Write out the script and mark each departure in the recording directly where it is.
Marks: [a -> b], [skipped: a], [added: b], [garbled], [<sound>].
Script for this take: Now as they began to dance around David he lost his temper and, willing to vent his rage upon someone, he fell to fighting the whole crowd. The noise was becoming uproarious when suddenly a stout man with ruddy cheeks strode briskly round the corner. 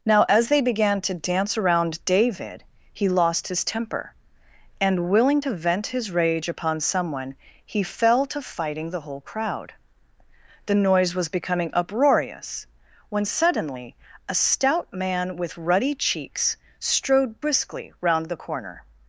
Now as they began to dance around David he lost his temper and, willing to vent his rage upon someone, he fell to fighting the whole crowd. The noise was becoming uproarious when suddenly a stout man with ruddy cheeks strode briskly round the corner.